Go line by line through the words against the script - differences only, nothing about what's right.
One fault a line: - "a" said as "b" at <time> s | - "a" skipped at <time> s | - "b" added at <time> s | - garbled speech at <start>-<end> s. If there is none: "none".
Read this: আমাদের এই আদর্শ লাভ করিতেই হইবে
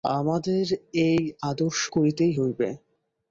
- "লাভ" skipped at 1.8 s